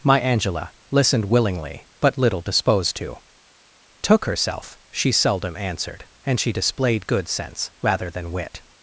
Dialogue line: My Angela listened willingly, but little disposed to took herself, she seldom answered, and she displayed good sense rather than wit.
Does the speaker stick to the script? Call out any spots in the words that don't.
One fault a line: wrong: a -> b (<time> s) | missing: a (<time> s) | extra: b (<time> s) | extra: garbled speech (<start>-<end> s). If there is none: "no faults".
no faults